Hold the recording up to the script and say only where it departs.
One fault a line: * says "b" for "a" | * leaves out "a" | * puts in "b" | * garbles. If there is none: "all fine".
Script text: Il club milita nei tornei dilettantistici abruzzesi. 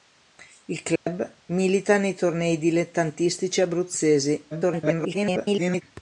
* garbles